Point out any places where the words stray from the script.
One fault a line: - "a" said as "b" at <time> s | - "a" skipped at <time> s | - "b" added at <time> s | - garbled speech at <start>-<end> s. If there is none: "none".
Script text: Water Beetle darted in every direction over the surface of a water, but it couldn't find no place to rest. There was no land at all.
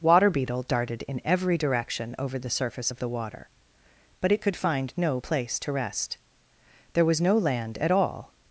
- "a" said as "the" at 3.0 s
- "couldn't" said as "could" at 4.4 s